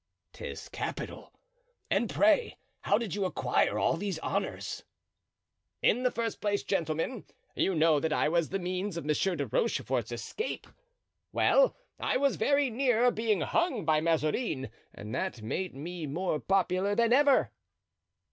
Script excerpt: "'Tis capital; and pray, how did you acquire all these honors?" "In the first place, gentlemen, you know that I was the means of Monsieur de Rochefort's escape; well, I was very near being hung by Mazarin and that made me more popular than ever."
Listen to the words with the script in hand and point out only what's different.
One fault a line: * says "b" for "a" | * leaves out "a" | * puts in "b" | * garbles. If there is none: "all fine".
all fine